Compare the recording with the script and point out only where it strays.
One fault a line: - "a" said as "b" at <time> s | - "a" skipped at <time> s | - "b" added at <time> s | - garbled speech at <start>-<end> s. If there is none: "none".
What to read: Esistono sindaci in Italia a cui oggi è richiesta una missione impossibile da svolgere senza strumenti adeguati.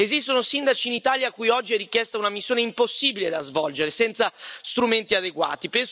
none